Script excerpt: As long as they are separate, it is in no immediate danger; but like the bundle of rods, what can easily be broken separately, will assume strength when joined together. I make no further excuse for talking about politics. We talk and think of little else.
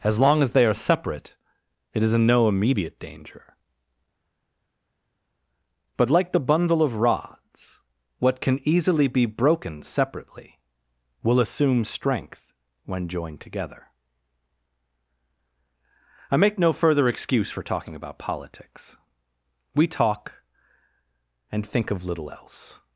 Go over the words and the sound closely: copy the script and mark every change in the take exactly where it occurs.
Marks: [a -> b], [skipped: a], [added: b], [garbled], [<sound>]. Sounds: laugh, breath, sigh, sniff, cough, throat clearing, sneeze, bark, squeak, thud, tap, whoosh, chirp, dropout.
As long as they are separate, it is in no immediate danger; but like the bundle of rods, what can easily be broken separately, will assume strength when joined together. I make no further excuse for talking about politics. We talk and think of little else.